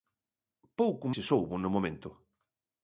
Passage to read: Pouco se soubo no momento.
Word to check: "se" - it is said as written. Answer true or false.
true